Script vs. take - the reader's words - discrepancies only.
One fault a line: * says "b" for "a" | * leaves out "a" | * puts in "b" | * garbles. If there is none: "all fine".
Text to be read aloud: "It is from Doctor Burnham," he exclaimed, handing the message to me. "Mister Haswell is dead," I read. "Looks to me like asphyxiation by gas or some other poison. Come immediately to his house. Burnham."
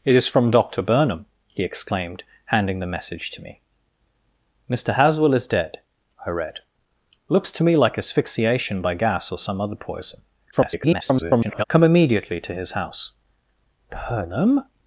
* garbles